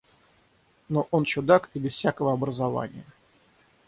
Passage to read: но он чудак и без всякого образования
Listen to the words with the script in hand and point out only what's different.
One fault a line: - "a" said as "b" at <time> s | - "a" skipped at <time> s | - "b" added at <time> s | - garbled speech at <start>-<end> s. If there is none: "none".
none